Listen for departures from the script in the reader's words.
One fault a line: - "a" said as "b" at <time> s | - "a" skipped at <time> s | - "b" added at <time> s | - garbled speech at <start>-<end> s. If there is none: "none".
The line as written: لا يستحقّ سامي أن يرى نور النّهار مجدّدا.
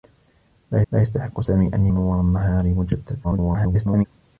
- "لا" added at 0.9 s
- "يرى" skipped at 1.9 s
- garbled speech at 3.2-4.1 s